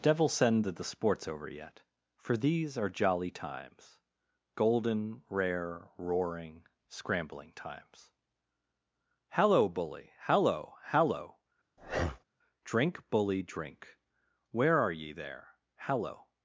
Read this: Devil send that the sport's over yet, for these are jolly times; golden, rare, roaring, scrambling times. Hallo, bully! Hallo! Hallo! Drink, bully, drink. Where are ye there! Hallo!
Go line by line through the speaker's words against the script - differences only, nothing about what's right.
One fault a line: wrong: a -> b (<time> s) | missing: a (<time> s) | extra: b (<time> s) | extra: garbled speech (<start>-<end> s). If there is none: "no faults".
no faults